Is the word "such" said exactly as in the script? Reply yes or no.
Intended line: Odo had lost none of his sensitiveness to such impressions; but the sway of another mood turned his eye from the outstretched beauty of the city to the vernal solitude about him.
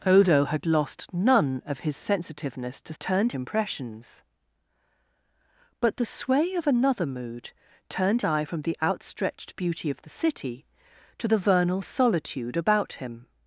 no